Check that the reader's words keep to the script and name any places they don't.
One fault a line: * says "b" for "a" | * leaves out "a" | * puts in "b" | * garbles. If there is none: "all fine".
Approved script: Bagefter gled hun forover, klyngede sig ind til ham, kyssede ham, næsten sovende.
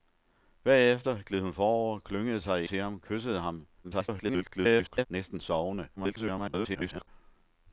* leaves out "ind"
* garbles
* garbles